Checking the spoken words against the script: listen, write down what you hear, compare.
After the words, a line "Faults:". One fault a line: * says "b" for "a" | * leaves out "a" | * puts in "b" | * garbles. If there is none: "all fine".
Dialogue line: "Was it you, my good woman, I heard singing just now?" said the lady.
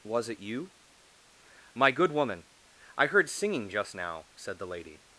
"Was it you, my good woman, I heard singing just now?" said the lady.
Faults:
all fine